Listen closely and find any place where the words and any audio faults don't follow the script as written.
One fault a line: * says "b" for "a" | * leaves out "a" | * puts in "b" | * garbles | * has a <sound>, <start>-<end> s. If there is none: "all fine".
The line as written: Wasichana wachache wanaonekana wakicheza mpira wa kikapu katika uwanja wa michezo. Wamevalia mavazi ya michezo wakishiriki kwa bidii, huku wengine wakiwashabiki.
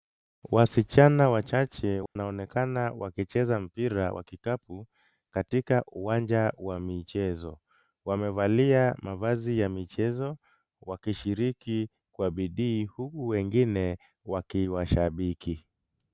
* has a dropout, 2.1-2.2 s